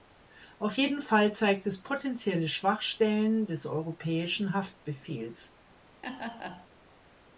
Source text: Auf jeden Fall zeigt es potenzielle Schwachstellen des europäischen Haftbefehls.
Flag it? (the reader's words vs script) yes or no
no